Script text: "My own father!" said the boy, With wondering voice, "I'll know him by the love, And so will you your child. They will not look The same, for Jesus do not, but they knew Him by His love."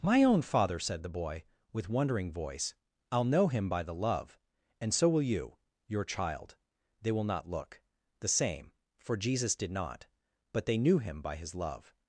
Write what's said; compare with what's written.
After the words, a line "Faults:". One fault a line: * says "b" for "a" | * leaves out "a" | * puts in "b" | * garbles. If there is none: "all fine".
"My own father!" said the boy, With wondering voice, "I'll know him by the love, And so will you your child. They will not look The same, for Jesus did not, but they knew Him by His love."
Faults:
* says "did" for "do"